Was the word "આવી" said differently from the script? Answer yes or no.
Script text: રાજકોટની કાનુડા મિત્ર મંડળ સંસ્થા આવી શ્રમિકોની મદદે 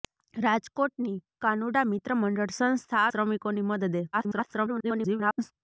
yes